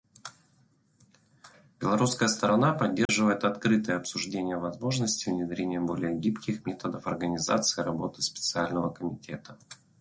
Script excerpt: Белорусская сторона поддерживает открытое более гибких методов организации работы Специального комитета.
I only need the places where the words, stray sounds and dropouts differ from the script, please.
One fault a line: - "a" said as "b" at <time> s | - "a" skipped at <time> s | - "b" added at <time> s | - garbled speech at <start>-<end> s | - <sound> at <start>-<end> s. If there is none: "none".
- dropout at 3.1-3.1 s
- "обсуждение возможности внедрения" added at 4.0 s